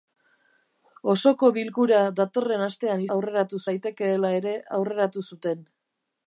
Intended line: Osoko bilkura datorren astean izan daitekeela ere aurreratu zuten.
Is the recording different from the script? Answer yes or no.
yes